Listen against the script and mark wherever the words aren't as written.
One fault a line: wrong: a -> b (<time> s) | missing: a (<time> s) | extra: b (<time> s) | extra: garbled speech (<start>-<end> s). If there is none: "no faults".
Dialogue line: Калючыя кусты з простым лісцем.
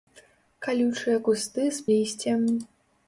missing: простым (1.8 s)